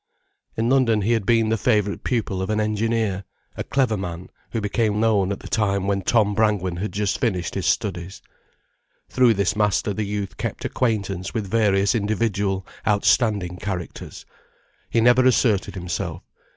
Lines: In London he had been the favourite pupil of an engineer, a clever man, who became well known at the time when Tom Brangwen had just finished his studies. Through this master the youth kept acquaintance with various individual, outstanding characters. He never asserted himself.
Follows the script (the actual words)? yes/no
no